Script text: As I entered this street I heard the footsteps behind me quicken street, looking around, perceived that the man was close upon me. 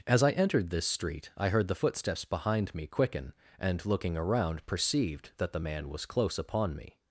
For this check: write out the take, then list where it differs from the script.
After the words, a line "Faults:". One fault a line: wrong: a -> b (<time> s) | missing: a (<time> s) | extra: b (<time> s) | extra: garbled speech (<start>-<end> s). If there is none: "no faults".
As I entered this street I heard the footsteps behind me quicken and, looking around, perceived that the man was close upon me.
Faults:
wrong: street -> and (3.6 s)